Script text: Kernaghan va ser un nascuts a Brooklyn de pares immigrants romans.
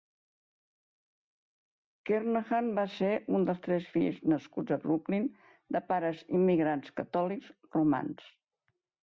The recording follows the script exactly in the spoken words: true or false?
false